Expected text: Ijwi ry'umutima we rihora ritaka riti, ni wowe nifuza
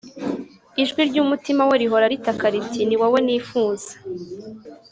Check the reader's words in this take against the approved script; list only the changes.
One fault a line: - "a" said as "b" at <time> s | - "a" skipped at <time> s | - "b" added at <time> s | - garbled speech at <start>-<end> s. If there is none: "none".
none